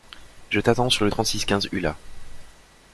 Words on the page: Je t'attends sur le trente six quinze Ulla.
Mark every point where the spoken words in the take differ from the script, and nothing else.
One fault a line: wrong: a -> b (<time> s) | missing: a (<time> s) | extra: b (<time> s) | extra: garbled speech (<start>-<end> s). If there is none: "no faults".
no faults